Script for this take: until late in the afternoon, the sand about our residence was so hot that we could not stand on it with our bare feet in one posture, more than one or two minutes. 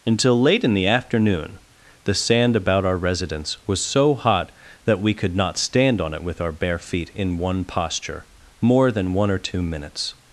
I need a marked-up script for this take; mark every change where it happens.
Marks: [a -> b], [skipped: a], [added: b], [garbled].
until late in the afternoon, the sand about our residence was so hot that we could not stand on it with our bare feet in one posture, more than one or two minutes.